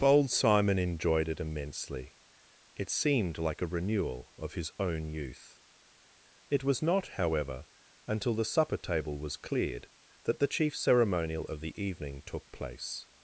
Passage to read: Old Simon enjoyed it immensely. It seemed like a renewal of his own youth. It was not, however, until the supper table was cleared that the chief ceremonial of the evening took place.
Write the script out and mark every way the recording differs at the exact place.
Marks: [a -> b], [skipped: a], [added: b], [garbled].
[Old -> Bold] Simon enjoyed it immensely. It seemed like a renewal of his own youth. It was not, however, until the supper table was cleared that the chief ceremonial of the evening took place.